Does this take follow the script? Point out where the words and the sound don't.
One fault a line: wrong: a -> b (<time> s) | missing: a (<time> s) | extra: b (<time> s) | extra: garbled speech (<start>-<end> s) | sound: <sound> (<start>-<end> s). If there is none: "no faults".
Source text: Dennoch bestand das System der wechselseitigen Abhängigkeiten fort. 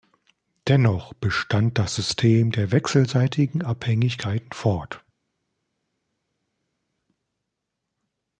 no faults